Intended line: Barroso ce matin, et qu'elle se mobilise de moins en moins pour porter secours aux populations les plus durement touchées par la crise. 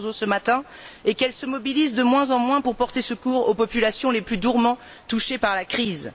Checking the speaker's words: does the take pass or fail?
pass